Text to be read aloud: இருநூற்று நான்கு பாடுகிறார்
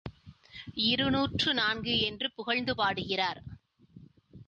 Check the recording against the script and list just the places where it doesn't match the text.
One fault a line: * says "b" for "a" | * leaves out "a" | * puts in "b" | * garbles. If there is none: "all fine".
* puts in "என்று புகழ்ந்து"